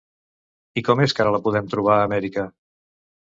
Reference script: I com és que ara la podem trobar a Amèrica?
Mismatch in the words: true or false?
false